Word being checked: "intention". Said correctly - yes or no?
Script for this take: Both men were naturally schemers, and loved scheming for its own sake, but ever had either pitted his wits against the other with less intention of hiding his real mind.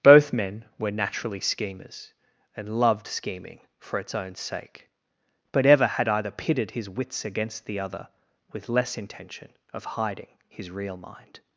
yes